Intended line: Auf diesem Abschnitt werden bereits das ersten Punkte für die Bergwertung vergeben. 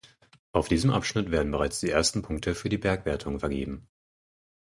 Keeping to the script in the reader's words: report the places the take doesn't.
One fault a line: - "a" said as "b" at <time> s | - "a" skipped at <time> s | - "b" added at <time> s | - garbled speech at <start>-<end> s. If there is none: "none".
- "das" said as "die" at 1.8 s